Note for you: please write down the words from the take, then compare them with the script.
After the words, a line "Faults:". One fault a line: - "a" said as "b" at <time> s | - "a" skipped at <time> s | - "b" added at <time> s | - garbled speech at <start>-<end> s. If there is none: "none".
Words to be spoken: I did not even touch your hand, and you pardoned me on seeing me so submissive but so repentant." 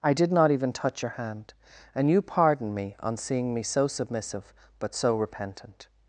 I did not even touch your hand, and you pardoned me on seeing me so submissive but so repentant."
Faults:
none